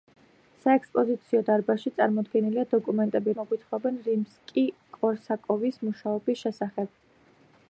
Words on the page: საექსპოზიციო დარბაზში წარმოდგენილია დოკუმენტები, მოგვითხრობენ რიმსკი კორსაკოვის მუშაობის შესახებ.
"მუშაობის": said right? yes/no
yes